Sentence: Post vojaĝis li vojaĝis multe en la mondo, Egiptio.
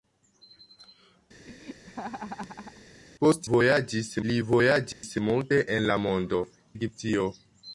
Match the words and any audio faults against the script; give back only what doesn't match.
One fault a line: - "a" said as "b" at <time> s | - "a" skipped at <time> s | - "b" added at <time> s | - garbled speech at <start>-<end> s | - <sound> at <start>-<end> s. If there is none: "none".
- laugh at 1.4-2.9 s
- dropout at 4.9-5.0 s